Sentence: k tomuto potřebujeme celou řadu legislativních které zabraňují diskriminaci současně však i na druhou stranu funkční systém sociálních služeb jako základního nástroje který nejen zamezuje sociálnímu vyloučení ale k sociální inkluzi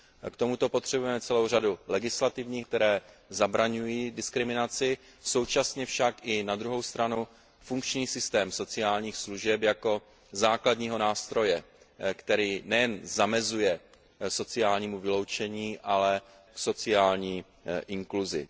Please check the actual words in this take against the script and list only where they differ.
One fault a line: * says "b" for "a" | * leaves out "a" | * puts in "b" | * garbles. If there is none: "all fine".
all fine